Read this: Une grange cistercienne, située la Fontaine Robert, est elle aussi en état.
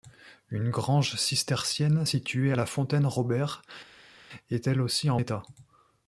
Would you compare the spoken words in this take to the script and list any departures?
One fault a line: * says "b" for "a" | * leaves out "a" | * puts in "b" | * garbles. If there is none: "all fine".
all fine